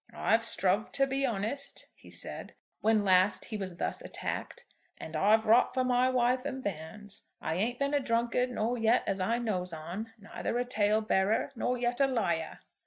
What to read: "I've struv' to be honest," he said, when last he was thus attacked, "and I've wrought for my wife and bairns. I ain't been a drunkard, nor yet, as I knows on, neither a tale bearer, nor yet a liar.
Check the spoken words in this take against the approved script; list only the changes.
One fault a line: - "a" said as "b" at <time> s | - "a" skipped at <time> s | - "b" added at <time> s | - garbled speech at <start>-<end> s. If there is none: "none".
none